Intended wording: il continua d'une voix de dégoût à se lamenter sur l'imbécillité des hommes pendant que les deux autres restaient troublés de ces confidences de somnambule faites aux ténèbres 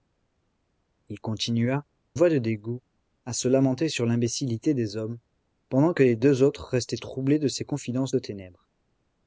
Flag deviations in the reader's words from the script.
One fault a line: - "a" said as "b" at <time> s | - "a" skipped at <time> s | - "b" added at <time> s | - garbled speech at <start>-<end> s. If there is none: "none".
- "d'une" skipped at 1.9 s
- "de somnambule faites" skipped at 8.1 s